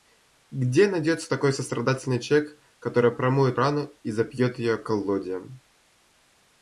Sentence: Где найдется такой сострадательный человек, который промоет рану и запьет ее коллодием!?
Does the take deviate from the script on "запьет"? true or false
false